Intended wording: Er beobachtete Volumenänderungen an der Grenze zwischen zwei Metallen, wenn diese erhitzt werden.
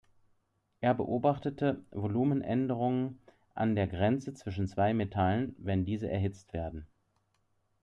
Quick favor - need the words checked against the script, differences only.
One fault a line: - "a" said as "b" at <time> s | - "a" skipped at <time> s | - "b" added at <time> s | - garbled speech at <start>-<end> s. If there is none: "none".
none